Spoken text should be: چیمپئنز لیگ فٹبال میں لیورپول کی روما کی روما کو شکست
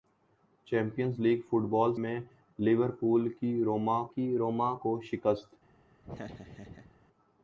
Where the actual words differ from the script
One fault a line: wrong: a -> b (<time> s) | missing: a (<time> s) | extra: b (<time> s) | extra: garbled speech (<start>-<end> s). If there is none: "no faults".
no faults